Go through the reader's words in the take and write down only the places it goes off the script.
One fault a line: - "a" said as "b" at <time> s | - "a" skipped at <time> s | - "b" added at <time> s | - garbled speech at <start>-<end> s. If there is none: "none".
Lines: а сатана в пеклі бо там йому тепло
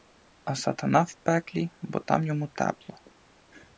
none